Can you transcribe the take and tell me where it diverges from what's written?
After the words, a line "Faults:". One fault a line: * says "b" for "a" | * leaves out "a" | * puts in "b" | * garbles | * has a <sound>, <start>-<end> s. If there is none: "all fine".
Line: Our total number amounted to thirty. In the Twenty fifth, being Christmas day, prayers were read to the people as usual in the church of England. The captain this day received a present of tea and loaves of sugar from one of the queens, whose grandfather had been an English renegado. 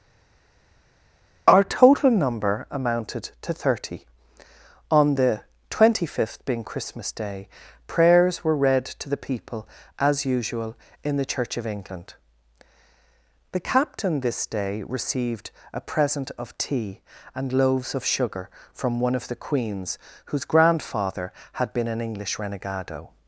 Our total number amounted to thirty. On the Twenty fifth, being Christmas day, prayers were read to the people as usual in the church of England. The captain this day received a present of tea and loaves of sugar from one of the queens, whose grandfather had been an English renegado.
Faults:
* says "On" for "In"